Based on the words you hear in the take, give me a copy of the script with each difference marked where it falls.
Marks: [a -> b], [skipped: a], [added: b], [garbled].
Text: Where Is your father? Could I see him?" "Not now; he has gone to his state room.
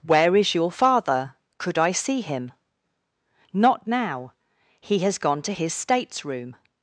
Where Is your father? Could I see him?" "Not now; he has gone to his [state -> states] room.